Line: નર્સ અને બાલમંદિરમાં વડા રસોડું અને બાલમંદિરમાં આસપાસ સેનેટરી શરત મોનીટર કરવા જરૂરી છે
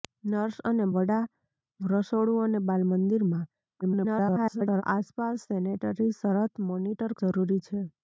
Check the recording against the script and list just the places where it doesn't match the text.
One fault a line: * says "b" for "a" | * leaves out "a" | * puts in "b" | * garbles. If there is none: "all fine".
* leaves out "બાલમંદિરમાં"
* garbles
* leaves out "કરવા"